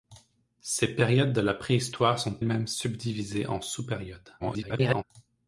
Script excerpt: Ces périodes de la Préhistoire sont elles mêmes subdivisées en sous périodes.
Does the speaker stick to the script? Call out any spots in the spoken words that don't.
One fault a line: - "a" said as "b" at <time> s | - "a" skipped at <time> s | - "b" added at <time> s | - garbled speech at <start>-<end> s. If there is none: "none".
- "elles" skipped at 2.4 s
- garbled speech at 4.4-5.0 s